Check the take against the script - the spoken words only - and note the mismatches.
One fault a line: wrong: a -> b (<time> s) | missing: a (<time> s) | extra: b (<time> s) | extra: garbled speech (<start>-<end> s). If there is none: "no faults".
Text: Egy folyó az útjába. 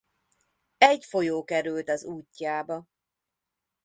extra: került (1.4 s)